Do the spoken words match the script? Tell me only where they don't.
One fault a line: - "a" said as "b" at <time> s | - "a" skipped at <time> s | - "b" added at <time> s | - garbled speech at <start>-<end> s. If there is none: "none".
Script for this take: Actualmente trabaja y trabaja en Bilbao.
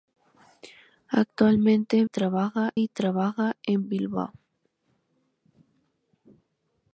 none